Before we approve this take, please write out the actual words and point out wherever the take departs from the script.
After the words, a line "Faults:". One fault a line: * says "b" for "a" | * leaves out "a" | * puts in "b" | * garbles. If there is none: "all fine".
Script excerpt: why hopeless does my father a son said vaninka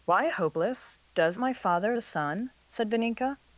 why hopeless does my father a son said vaninka
Faults:
all fine